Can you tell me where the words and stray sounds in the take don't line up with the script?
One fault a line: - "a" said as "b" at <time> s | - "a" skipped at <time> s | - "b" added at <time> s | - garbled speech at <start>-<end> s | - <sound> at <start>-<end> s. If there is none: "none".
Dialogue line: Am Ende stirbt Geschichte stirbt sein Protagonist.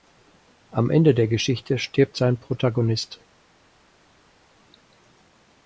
- "stirbt" said as "der" at 1.1 s